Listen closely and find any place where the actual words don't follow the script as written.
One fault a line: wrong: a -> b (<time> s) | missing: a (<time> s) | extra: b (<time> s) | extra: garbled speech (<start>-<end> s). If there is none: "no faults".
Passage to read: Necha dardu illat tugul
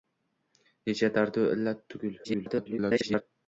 extra: garbled speech (2.2-3.2 s)